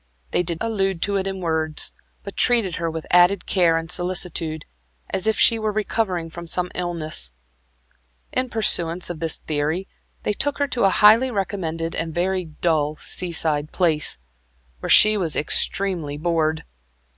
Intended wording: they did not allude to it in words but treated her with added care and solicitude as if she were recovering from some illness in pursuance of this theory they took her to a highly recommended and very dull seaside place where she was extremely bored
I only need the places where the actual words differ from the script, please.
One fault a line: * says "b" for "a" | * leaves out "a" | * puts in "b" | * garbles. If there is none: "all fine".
* leaves out "not"